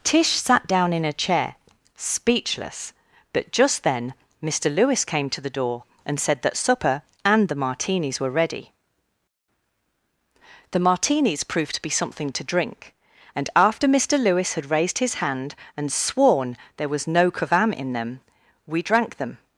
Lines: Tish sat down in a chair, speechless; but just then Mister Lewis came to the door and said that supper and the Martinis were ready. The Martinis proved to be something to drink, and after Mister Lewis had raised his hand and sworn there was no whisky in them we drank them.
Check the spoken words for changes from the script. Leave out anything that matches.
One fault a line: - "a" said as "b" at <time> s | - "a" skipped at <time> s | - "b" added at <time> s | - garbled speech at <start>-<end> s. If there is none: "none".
- "whisky" said as "kavam" at 17.3 s